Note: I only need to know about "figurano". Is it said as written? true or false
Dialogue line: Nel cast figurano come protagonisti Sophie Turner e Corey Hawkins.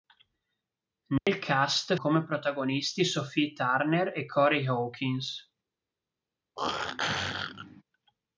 false